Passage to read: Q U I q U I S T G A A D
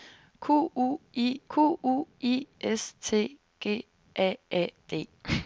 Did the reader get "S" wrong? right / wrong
right